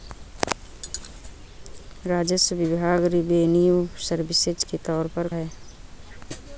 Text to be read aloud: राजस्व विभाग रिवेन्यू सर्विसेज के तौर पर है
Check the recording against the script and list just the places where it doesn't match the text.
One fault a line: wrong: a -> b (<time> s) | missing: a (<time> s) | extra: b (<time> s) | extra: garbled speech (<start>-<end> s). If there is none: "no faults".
no faults